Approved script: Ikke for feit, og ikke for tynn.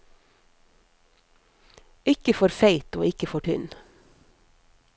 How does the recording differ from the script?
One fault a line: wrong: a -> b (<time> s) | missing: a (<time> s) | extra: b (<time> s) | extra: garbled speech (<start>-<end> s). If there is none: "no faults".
no faults